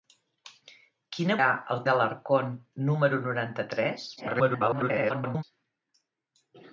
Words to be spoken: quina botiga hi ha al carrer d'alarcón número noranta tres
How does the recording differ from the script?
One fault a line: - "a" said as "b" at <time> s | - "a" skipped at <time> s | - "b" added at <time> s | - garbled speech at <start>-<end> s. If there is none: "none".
- "botiga hi" skipped at 1.4 s
- "carrer" skipped at 1.8 s
- garbled speech at 4.2-5.4 s